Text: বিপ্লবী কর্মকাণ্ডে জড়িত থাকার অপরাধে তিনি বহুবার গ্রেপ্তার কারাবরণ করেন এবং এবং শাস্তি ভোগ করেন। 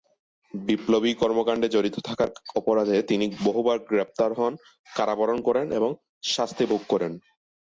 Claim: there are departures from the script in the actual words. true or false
true